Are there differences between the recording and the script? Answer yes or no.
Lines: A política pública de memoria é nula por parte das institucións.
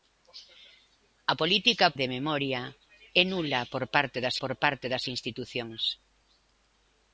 yes